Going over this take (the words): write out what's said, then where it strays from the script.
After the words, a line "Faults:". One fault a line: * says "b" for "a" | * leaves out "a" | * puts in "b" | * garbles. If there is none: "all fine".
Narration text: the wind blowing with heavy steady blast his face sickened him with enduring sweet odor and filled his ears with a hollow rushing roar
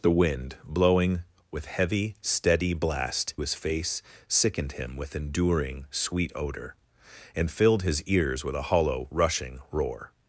the wind blowing with heavy steady blast his face sickened him with enduring sweet odor and filled his ears with a hollow rushing roar
Faults:
all fine